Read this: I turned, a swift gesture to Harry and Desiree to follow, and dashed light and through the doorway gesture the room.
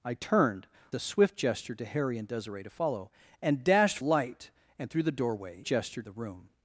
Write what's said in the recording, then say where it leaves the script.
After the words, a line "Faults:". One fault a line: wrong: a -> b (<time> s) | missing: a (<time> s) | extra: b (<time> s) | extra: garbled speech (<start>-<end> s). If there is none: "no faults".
I turned, a swift gesture to Harry and Desiree to follow, and dashed light and through the doorway gesture the room.
Faults:
no faults